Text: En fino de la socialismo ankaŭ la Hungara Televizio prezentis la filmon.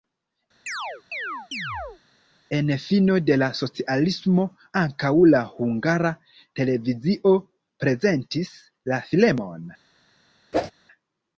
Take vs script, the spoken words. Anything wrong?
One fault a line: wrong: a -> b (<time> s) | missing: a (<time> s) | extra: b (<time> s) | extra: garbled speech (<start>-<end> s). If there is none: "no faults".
no faults